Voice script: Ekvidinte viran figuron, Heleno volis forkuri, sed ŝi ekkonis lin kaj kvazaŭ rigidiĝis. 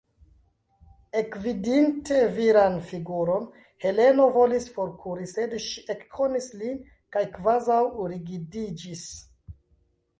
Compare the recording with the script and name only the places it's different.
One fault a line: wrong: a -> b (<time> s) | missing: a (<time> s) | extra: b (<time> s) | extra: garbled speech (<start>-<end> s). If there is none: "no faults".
no faults